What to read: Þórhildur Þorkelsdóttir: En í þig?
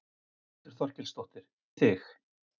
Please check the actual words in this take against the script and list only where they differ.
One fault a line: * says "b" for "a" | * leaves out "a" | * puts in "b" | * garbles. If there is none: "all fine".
* leaves out "En"